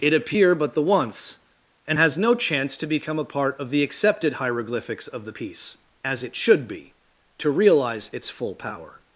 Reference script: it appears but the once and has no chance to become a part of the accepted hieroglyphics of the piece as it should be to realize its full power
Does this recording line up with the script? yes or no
no